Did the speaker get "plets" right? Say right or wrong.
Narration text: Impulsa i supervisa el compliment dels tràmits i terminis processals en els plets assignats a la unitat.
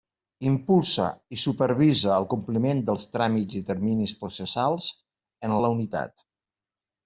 wrong